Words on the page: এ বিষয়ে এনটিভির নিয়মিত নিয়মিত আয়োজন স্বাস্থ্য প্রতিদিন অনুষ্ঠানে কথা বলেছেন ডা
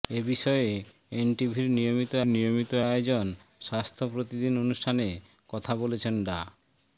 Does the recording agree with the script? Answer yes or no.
yes